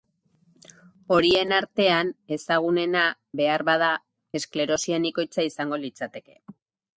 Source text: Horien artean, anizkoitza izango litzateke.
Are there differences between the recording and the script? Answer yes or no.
yes